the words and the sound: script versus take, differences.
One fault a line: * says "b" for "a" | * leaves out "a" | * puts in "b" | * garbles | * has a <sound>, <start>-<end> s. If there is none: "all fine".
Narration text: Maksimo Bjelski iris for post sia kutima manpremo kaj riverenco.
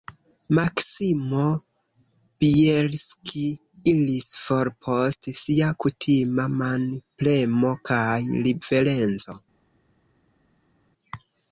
all fine